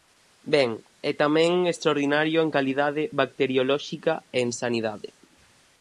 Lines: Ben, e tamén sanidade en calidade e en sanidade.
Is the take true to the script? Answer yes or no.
no